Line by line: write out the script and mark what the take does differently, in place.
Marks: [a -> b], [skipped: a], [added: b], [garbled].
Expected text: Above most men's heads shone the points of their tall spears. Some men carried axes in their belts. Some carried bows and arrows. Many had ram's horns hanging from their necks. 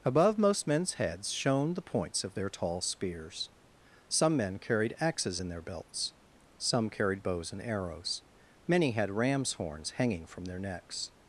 Above most men's heads shone the points of their tall spears. Some men carried axes in their belts. Some carried bows and arrows. Many had ram's horns hanging from their necks.